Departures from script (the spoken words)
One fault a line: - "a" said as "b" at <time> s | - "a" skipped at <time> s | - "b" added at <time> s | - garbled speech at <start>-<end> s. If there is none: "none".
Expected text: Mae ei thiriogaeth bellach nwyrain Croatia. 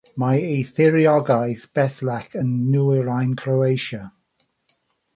- "yn" added at 2.4 s